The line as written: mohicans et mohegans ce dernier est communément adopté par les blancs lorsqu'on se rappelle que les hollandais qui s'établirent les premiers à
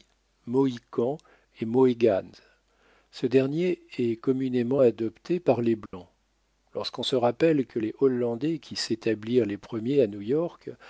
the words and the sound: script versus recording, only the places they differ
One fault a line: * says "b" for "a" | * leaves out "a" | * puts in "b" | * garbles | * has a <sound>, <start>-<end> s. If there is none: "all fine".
* has a dropout, 5.9-5.9 s